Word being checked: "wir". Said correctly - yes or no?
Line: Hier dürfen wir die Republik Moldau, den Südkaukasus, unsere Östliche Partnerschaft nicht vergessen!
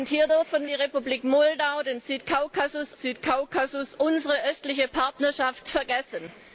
no